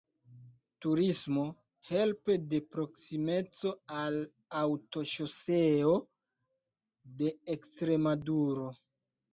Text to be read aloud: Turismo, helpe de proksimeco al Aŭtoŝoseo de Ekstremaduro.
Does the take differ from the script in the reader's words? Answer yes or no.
no